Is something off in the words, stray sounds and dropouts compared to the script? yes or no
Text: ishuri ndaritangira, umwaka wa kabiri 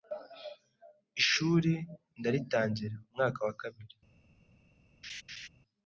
yes